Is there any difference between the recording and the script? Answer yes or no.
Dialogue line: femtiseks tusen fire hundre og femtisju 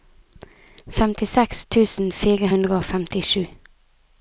no